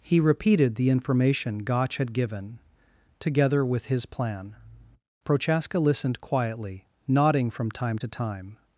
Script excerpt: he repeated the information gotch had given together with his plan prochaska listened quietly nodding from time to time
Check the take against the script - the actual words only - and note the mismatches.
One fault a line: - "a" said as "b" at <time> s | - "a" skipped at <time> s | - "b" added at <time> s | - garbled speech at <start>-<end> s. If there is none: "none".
none